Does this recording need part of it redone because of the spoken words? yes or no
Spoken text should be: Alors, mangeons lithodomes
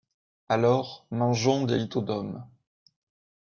yes